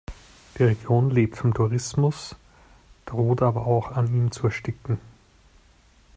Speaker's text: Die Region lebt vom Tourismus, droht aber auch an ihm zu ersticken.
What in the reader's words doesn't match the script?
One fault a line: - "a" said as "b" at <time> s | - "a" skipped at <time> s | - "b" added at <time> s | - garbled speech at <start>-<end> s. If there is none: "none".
none